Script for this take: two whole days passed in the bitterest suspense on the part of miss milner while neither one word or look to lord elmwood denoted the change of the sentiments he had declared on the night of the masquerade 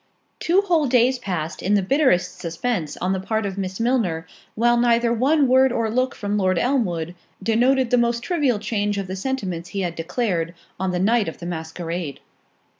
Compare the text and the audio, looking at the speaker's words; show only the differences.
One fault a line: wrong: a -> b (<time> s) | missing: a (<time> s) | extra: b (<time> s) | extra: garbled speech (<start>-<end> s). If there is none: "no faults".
wrong: to -> from (6.2 s)
extra: most trivial (8.0 s)